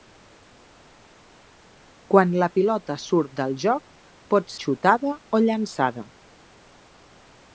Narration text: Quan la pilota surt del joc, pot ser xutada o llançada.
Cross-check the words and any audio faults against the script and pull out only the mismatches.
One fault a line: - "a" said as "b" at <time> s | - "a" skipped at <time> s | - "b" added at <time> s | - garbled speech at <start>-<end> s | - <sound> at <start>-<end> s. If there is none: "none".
- "ser" skipped at 4.5 s